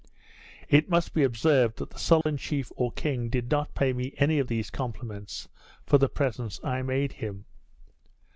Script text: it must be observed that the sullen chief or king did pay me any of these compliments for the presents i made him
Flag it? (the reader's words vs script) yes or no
yes